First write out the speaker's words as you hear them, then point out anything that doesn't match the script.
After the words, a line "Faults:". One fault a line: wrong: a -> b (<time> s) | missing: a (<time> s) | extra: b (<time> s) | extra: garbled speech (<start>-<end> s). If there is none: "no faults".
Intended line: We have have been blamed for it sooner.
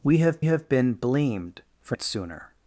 We have have been blamed for it sooner.
Faults:
no faults